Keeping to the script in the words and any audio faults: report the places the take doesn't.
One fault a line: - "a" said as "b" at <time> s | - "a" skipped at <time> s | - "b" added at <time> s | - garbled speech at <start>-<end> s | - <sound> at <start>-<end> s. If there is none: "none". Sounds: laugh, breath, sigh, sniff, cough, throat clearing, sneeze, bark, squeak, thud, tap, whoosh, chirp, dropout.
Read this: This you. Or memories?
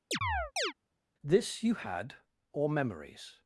- chirp at 0.1-0.7 s
- "had" added at 1.7 s